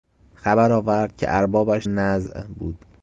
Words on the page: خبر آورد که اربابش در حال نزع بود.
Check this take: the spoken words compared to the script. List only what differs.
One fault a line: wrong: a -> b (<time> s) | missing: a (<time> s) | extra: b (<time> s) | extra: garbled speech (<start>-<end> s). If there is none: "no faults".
missing: در حال (1.9 s)